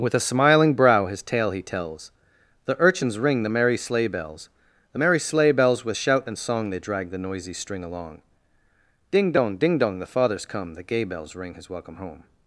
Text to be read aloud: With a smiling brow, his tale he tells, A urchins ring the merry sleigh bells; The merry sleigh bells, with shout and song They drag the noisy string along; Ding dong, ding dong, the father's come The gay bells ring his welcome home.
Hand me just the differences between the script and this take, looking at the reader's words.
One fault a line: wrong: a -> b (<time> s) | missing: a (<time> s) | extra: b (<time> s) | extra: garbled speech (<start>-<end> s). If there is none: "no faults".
wrong: A -> The (2.6 s)